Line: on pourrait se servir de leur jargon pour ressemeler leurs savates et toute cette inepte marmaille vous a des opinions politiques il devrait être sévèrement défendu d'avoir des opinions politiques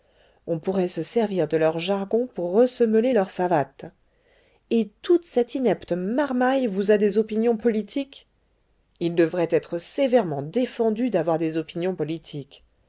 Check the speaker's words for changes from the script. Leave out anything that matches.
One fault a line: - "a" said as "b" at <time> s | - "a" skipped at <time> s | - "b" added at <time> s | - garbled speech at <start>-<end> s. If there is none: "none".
none